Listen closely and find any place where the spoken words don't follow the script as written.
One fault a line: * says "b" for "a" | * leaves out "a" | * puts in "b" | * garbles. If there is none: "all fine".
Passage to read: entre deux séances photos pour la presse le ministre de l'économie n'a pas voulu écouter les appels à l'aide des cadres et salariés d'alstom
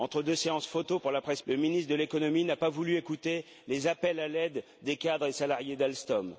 all fine